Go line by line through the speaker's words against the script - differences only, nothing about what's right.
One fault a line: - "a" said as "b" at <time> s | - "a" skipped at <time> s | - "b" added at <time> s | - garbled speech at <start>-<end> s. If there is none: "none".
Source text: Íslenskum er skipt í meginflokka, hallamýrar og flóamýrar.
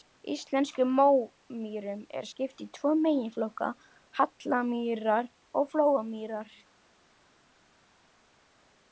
- "mómýrum" added at 1.0 s
- "tvo" added at 2.8 s